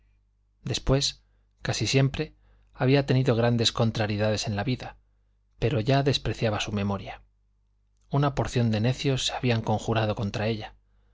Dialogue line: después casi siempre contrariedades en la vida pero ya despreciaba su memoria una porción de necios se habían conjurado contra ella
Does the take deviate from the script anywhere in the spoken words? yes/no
yes